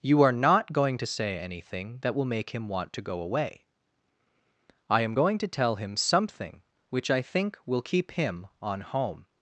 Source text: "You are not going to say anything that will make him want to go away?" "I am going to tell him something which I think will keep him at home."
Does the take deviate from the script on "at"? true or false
true